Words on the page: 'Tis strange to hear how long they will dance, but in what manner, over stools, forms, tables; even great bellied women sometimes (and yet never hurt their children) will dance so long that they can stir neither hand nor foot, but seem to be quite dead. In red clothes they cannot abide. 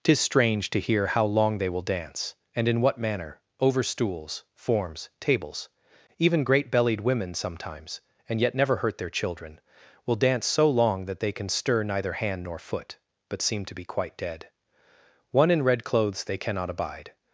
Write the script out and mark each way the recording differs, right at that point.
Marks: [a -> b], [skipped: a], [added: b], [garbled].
'Tis strange to hear how long they will dance, [but -> and] in what manner, over stools, forms, tables; even great bellied women sometimes (and yet never hurt their children) will dance so long that they can stir neither hand nor foot, but seem to be quite dead. [added: One] In red clothes they cannot abide.